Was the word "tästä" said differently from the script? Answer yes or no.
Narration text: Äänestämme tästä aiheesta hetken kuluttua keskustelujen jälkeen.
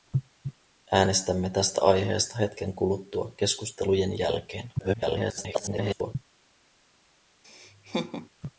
no